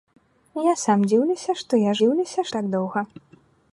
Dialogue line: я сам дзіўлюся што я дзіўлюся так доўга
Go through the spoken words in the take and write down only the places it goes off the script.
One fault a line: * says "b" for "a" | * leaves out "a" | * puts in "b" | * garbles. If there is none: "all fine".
all fine